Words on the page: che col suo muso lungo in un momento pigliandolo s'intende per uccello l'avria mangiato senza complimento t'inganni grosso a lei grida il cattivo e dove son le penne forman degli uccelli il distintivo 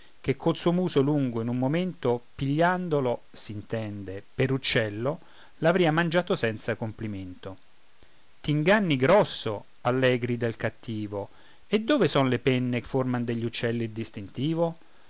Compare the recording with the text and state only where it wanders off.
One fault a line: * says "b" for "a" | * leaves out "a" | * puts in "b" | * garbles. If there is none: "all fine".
all fine